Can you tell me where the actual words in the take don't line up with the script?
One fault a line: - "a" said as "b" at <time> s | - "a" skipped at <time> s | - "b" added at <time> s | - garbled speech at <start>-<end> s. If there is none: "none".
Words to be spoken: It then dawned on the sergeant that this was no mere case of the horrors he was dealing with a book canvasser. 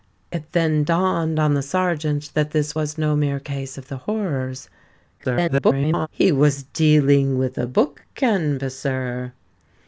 - garbled speech at 5.2-6.1 s